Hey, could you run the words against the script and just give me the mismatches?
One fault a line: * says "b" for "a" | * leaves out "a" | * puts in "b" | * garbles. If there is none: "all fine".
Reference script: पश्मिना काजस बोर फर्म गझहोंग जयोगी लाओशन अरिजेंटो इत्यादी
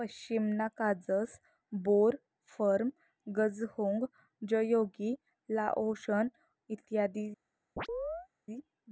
* leaves out "अरिजेंटो"